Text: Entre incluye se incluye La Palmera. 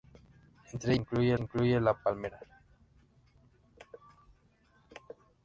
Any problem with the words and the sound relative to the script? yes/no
no